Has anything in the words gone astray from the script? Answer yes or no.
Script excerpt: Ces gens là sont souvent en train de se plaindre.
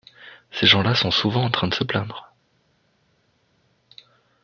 no